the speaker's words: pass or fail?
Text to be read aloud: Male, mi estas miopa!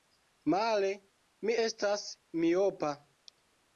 pass